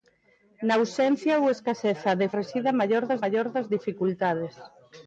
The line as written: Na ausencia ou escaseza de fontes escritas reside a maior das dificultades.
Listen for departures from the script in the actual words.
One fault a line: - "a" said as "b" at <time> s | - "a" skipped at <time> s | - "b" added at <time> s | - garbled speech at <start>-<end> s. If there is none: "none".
- "fontes escritas reside a" said as "reside a maior das" at 2.4 s